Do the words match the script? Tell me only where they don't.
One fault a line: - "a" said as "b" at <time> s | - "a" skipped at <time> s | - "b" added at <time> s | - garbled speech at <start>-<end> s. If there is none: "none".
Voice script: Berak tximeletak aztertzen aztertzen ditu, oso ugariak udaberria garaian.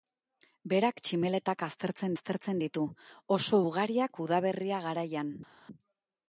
none